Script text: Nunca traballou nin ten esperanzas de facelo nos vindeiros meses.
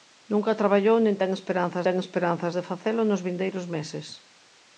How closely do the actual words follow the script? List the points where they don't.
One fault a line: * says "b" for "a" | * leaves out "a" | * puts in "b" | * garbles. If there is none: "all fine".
* puts in "ten esperanzas"